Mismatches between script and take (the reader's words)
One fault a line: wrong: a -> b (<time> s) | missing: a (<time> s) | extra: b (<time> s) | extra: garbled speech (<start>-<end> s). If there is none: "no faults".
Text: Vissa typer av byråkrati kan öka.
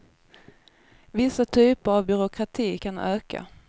no faults